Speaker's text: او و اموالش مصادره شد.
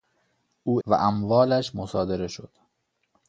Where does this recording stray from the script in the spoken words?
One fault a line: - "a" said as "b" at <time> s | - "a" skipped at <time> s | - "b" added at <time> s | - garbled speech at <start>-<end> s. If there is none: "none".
none